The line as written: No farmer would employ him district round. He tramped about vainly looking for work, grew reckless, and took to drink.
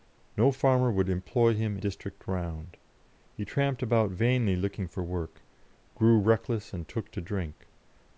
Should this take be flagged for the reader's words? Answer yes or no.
no